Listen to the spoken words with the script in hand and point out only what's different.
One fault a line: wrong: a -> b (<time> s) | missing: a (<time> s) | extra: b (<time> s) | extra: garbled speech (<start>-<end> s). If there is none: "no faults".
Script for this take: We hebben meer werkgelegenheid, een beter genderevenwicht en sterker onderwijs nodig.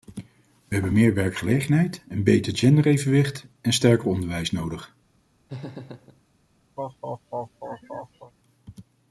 no faults